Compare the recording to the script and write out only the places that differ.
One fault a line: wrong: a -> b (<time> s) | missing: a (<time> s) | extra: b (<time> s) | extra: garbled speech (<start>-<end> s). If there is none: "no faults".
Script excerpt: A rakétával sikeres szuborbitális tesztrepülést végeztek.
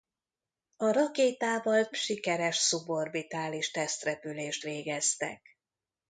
no faults